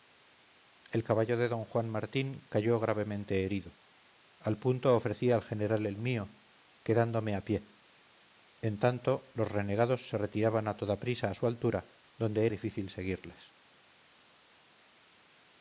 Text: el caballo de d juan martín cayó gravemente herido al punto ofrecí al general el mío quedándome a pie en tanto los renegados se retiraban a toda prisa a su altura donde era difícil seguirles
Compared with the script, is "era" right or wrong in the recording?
wrong